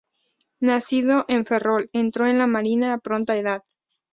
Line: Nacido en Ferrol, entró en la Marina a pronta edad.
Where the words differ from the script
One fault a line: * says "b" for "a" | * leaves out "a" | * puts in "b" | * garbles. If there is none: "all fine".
all fine